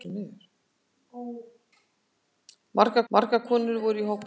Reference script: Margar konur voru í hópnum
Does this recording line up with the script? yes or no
no